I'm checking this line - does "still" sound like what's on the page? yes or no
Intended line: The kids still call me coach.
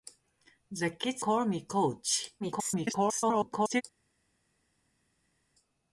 no